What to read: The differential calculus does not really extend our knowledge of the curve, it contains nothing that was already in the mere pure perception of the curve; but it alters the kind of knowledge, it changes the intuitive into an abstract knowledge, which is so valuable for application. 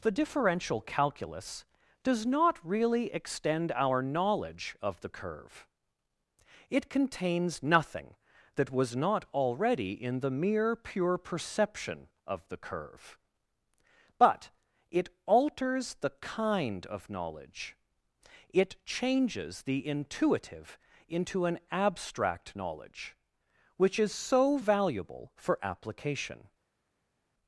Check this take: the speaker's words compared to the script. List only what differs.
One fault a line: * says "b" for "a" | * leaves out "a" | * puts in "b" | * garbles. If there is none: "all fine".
* puts in "not"